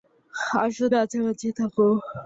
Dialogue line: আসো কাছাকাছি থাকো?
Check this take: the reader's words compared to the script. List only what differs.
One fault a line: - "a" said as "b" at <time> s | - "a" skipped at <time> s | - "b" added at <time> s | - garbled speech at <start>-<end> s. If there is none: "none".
none